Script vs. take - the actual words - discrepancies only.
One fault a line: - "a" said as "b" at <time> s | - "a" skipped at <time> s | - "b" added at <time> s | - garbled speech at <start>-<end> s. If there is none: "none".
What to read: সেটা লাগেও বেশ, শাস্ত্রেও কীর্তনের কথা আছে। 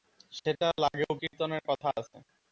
- "বেশ শাস্ত্রেও" skipped at 1.1 s